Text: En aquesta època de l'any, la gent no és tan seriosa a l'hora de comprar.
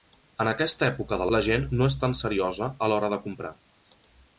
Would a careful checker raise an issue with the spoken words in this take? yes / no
yes